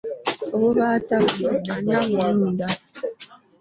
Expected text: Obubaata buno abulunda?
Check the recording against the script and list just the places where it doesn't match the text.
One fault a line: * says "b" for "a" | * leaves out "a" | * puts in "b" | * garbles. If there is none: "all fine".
* puts in "ani"